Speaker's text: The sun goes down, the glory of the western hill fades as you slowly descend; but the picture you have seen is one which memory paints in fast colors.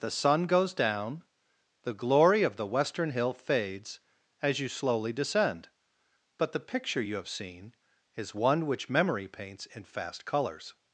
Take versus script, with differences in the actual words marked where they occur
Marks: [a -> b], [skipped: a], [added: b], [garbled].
The sun goes down, the glory of the western hill fades as you slowly descend; but the picture you have seen is one which memory paints in fast colors.